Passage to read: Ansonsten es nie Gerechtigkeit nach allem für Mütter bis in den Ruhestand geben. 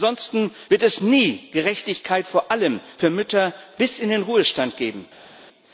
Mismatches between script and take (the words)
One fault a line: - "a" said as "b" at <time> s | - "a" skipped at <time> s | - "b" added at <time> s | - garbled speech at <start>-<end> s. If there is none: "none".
- "wird" added at 0.7 s
- "nach" said as "vor" at 2.2 s